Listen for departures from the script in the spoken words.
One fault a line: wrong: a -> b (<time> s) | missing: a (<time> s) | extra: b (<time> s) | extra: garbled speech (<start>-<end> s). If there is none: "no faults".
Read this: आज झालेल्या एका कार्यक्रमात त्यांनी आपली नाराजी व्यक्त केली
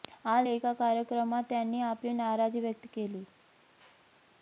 missing: झालेल्या (0.5 s)